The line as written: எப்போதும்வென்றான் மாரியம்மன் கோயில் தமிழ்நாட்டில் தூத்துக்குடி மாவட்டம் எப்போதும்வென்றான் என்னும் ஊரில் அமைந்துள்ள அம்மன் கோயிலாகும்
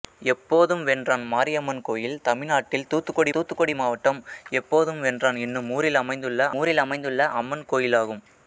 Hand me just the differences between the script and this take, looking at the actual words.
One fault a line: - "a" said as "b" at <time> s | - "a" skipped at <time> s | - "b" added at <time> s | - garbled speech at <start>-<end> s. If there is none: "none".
- "தூத்துக்குடி" added at 3.3 s
- "ஊரில் அமைந்துள்ள" added at 6.6 s